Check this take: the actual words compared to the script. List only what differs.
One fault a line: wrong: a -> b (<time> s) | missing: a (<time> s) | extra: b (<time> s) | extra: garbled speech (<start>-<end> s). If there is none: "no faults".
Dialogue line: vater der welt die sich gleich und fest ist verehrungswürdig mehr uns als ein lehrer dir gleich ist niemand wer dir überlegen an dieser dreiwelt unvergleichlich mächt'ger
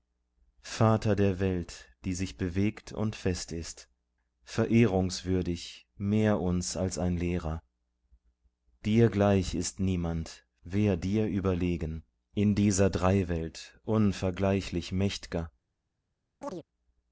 wrong: gleich -> bewegt (2.4 s)
wrong: an -> in (12.3 s)